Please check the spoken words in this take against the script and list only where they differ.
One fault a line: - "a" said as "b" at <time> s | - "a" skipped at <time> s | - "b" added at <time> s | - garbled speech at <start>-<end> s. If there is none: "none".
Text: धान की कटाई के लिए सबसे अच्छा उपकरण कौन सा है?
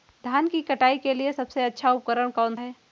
- "सा" skipped at 2.5 s